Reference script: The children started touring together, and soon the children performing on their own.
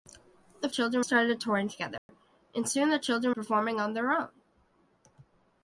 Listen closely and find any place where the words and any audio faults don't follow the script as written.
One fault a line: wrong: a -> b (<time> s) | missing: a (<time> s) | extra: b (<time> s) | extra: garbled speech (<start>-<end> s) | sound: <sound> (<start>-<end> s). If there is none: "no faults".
sound: dropout (2.0-2.1 s)